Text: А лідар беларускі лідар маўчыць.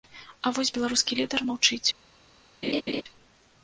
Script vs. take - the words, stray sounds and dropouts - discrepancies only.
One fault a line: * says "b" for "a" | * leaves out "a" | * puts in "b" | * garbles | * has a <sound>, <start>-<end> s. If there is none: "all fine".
* says "вось" for "лідар"
* has a laugh, 2.6-3.0 s